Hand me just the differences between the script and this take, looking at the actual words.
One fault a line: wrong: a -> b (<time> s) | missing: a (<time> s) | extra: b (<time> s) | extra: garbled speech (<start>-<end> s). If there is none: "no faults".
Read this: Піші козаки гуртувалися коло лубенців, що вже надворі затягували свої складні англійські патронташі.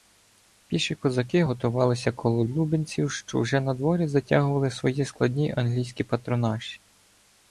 no faults